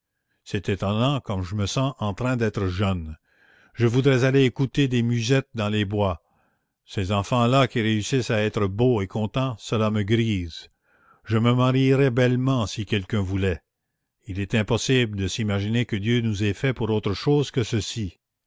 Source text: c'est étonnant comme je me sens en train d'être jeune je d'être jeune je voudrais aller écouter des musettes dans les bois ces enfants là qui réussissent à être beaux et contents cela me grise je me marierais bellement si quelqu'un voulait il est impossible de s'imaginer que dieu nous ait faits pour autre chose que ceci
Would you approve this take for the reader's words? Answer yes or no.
no